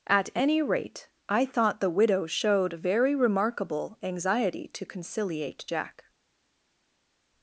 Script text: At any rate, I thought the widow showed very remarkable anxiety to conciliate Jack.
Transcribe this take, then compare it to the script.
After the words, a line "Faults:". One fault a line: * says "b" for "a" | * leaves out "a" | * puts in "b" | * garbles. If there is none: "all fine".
At any rate, I thought the widow showed very remarkable anxiety to conciliate Jack.
Faults:
all fine